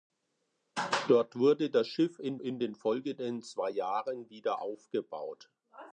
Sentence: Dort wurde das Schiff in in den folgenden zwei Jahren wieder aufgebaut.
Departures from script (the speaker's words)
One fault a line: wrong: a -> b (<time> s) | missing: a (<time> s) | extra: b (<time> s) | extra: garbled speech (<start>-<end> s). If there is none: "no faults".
no faults